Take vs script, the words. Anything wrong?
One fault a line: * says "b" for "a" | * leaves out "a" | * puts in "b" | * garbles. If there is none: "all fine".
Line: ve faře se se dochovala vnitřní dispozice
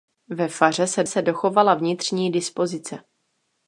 all fine